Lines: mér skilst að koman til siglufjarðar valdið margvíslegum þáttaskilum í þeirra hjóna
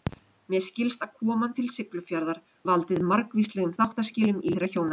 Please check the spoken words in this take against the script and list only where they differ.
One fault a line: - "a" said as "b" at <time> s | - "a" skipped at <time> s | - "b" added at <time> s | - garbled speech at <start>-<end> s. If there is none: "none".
none